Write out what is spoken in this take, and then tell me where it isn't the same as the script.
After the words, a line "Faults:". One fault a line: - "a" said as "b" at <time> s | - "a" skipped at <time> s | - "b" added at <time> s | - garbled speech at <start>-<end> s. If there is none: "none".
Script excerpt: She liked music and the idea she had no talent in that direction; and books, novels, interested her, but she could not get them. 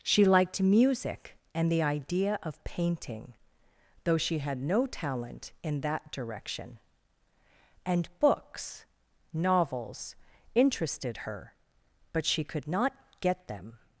She liked music and the idea of painting, though she had no talent in that direction; and books, novels, interested her, but she could not get them.
Faults:
- "of painting though" added at 2.4 s